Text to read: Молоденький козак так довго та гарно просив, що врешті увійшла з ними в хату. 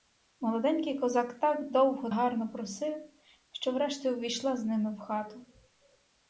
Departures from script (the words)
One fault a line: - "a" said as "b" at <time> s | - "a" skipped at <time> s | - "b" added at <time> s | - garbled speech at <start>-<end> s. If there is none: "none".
- "та" skipped at 2.1 s